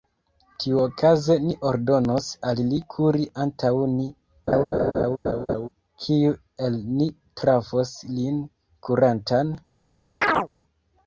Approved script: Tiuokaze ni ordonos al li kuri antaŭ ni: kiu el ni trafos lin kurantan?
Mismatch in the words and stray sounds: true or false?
true